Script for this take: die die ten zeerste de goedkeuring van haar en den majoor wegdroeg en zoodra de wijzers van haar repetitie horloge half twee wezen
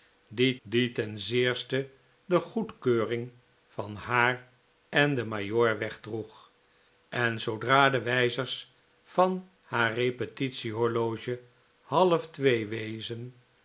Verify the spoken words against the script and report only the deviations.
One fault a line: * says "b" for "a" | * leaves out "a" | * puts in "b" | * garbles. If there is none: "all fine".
all fine